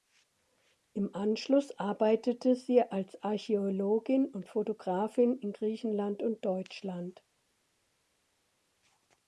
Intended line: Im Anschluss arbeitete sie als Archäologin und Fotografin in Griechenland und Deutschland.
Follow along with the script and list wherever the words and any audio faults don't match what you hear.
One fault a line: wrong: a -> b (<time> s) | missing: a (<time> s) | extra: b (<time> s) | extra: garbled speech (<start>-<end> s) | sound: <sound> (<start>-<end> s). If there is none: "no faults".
no faults